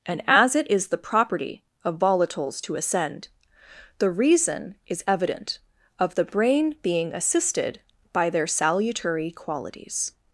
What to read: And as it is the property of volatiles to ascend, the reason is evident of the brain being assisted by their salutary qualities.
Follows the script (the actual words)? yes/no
yes